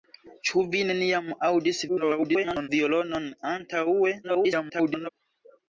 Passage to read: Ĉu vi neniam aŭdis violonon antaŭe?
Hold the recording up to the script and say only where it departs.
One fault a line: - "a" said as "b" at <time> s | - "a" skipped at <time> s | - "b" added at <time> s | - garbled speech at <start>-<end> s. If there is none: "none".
- garbled speech at 1.9-2.7 s
- garbled speech at 4.2-5.1 s